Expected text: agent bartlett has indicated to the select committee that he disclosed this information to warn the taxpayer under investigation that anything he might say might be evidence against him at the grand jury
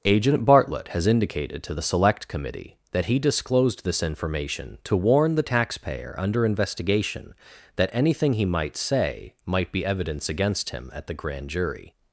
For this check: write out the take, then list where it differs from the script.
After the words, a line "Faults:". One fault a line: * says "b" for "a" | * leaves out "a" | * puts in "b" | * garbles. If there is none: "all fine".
agent bartlett has indicated to the select committee that he disclosed this information to warn the taxpayer under investigation that anything he might say might be evidence against him at the grand jury
Faults:
all fine